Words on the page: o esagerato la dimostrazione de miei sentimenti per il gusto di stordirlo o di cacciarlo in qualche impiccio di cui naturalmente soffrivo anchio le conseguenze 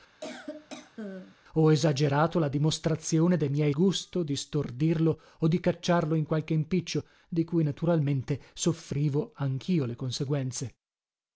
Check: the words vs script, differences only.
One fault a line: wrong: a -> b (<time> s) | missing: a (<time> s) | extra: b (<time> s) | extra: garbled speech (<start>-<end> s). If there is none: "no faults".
missing: sentimenti per il (3.7 s)